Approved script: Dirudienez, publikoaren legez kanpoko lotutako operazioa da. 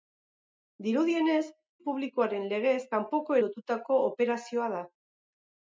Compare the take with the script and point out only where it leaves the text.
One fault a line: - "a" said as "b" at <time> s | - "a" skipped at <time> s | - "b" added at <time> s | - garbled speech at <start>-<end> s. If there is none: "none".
none